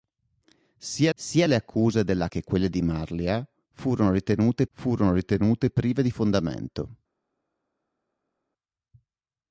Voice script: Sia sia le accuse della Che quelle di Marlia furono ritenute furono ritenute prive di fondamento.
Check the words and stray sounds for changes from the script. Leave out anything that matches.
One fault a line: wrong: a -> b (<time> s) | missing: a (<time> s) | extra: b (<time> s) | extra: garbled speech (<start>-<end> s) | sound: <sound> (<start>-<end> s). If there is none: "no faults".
no faults